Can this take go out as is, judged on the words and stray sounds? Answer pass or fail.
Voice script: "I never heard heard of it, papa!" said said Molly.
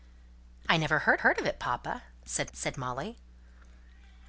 pass